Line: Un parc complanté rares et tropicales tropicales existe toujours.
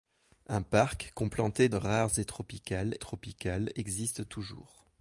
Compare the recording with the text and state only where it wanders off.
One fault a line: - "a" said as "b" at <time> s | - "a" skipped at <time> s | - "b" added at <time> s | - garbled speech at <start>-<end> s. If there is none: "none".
none